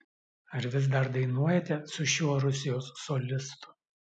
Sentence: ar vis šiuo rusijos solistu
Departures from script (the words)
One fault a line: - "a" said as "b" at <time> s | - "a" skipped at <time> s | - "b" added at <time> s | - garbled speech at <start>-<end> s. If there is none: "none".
- "dar dainuojate su" added at 0.9 s